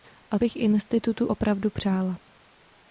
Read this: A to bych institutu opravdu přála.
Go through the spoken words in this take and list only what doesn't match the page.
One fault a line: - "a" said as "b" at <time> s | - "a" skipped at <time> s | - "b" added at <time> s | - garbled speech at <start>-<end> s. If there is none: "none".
- "to" skipped at 0.4 s